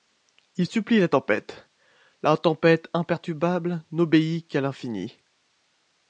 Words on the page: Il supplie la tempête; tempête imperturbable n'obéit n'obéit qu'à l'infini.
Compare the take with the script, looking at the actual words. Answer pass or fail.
fail